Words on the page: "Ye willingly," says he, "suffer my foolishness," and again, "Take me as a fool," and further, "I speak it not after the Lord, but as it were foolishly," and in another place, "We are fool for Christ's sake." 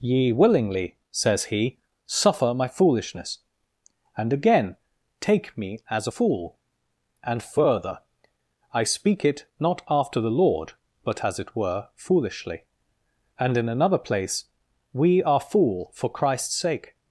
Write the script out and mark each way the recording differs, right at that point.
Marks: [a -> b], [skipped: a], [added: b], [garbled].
"Ye willingly," says he, "suffer my foolishness," and again, "Take me as a fool," and further, "I speak it not after the Lord, but as it were foolishly," and in another place, "We are fool for Christ's sake."